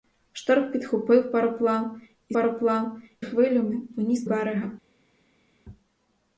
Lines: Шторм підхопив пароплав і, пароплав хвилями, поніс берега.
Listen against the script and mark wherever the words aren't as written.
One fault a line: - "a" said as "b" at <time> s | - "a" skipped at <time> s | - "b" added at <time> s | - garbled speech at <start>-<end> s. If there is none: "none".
none